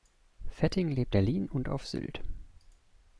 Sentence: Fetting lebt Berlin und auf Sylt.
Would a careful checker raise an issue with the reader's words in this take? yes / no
no